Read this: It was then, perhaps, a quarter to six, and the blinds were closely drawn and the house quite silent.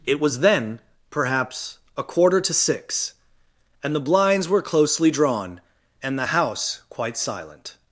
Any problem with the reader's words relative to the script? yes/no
no